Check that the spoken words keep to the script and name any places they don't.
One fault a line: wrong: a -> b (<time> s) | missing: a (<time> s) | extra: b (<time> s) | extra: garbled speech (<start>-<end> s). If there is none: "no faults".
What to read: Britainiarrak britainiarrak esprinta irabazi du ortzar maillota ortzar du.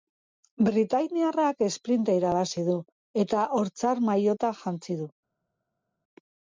missing: britainiarrak (1.6 s)
extra: eta (3.3 s)
wrong: ortzar -> jantzi (4.7 s)